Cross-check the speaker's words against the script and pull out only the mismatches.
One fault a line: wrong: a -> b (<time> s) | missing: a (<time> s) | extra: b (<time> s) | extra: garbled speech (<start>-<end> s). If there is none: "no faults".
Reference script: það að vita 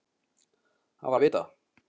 no faults